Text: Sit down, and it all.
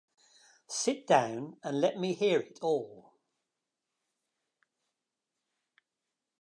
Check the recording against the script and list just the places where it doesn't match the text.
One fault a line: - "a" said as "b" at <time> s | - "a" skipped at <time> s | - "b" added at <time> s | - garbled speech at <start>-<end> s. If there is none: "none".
- "let me hear" added at 1.8 s